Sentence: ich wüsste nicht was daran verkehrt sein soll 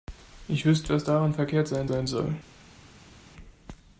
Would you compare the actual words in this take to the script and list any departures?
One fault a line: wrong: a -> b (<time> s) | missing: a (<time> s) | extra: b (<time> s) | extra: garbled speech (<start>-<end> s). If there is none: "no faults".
missing: nicht (0.9 s)
extra: sein (1.8 s)